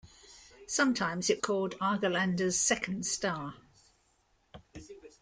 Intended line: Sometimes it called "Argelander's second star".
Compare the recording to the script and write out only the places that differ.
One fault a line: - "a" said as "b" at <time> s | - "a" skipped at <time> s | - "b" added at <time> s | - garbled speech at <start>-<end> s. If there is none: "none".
none